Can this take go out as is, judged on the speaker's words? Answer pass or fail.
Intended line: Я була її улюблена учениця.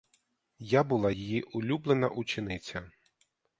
pass